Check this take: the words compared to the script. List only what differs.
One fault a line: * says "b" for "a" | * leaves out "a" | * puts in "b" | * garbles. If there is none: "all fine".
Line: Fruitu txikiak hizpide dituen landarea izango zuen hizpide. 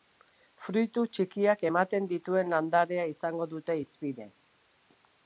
* says "ematen" for "hizpide"
* says "dute" for "zuen"